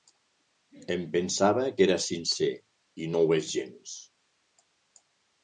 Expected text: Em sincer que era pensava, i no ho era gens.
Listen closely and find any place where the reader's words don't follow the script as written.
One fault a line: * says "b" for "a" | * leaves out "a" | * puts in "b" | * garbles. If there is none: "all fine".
* says "pensava" for "sincer"
* says "sincer" for "pensava"
* says "és" for "era"